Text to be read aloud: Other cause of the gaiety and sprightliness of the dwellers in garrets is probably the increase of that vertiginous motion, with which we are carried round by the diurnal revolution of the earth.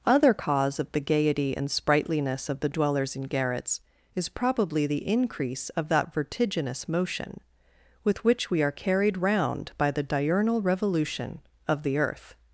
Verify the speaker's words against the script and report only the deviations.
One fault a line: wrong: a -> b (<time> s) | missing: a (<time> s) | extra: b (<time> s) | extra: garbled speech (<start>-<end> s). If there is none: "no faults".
no faults